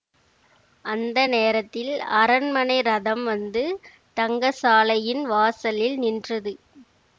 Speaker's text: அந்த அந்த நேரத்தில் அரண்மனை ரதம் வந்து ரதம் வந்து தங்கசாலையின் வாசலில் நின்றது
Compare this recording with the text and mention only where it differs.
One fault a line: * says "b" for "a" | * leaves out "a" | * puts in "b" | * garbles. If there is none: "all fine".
* leaves out "அந்த"
* leaves out "ரதம் வந்து"